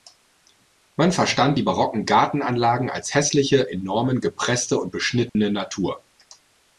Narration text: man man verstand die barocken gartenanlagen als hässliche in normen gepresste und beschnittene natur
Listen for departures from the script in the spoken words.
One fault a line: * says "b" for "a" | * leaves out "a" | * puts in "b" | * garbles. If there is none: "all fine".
* leaves out "man"